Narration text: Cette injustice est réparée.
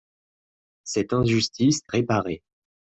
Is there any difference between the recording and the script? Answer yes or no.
yes